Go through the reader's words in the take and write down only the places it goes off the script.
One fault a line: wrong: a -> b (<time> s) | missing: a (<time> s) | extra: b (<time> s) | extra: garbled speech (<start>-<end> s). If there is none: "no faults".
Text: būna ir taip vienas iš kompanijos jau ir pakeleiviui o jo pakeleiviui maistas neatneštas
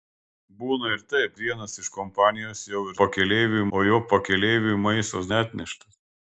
no faults